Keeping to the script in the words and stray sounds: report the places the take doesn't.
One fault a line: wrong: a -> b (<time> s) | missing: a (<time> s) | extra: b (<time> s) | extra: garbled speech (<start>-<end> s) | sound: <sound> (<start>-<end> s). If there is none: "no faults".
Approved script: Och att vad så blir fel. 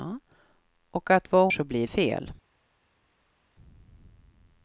no faults